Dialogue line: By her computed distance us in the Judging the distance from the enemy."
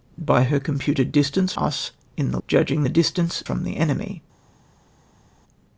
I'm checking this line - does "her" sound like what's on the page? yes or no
yes